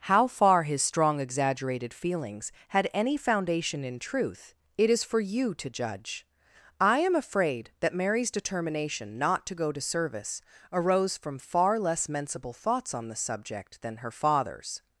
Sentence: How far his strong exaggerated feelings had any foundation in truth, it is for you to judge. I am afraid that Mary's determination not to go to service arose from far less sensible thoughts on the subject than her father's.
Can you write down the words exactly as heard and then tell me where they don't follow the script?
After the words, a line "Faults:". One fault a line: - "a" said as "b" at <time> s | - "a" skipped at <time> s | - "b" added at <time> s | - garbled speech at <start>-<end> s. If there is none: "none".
How far his strong exaggerated feelings had any foundation in truth, it is for you to judge. I am afraid that Mary's determination not to go to service arose from far less sensible thoughts on the subject than her father's.
Faults:
none